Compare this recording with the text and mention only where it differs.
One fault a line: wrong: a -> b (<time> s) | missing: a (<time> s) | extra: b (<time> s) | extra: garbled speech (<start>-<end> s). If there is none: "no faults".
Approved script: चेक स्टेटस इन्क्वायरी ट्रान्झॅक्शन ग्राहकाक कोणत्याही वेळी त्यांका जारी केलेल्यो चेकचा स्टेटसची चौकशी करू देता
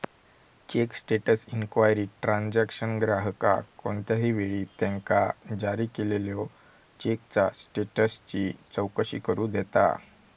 no faults